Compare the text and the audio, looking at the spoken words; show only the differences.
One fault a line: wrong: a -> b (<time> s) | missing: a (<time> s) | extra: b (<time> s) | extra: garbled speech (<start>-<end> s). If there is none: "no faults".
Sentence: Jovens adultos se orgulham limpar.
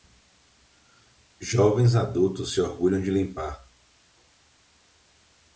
extra: de (3.0 s)